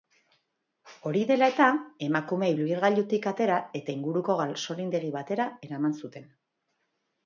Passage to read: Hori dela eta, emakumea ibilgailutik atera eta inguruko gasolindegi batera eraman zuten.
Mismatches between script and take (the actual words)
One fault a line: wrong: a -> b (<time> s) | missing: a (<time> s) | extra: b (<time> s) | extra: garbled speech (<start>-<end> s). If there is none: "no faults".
no faults